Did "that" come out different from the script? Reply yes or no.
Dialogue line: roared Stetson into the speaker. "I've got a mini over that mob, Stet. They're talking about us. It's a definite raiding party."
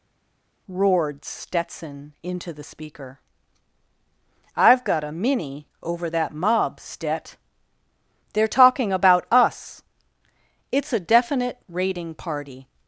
no